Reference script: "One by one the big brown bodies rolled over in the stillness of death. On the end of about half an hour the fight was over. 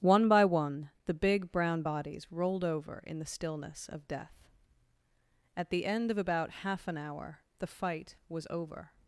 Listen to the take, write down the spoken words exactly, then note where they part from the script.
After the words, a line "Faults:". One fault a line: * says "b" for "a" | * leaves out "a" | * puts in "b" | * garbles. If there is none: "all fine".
"One by one the big brown bodies rolled over in the stillness of death. At the end of about half an hour the fight was over.
Faults:
* says "At" for "On"